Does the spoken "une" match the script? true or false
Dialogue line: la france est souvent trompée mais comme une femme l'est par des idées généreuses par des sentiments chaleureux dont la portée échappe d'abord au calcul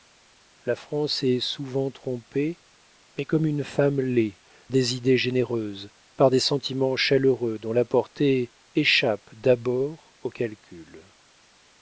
true